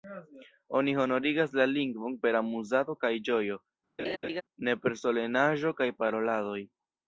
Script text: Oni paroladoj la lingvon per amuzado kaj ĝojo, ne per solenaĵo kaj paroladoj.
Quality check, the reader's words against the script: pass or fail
fail